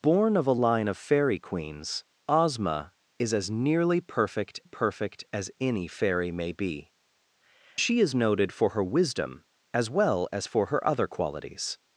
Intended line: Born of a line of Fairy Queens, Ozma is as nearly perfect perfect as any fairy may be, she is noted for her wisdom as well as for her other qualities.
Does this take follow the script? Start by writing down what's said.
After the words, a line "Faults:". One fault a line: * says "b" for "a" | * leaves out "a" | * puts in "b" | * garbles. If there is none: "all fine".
Born of a line of Fairy Queens, Ozma is as nearly perfect perfect as any fairy may be, she is noted for her wisdom as well as for her other qualities.
Faults:
all fine